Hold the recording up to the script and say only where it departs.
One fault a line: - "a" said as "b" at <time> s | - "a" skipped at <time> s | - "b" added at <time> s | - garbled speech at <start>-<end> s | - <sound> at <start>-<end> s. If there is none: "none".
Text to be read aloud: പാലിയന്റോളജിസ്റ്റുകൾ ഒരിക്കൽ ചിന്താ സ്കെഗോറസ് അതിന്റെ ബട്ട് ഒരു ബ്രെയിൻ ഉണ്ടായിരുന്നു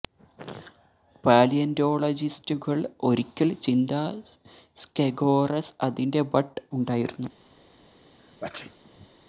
- "ഒരു ബ്രെയിൻ" skipped at 6.5 s
- sneeze at 8.2-9.1 s